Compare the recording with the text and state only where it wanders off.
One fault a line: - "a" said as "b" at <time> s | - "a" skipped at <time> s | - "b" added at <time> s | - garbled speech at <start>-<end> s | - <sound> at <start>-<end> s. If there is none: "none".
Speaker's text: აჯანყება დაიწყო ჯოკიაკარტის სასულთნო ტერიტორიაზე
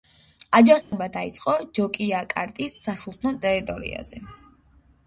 - dropout at 0.8-0.9 s